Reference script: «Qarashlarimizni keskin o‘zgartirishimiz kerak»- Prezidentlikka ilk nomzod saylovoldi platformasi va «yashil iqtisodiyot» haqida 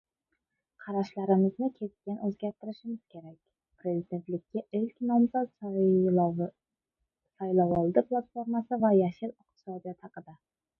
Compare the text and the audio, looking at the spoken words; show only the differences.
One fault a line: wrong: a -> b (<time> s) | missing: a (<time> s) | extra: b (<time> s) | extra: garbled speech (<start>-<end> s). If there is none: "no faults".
no faults